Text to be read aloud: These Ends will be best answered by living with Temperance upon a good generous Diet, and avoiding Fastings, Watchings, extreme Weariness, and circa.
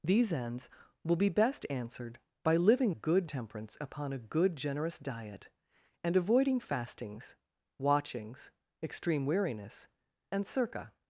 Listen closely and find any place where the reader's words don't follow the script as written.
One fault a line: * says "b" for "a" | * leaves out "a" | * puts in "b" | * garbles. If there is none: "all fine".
* says "good" for "with"